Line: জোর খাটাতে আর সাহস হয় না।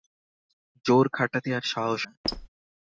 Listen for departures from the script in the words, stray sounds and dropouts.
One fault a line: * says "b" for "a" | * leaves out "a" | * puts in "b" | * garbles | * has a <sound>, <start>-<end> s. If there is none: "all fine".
* leaves out "হয়"
* has a squeak, 2.2-2.5 s